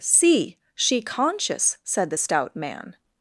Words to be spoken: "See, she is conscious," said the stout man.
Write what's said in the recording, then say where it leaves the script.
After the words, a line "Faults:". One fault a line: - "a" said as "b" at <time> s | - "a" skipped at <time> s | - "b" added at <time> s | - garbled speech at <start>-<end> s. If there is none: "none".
"See, she conscious," said the stout man.
Faults:
- "is" skipped at 1.0 s